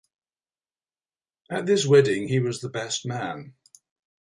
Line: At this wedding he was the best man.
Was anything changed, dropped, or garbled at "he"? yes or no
no